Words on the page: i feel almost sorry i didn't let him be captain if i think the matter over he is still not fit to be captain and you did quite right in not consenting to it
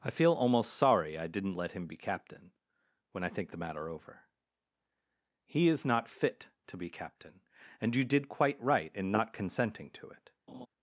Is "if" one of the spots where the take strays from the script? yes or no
yes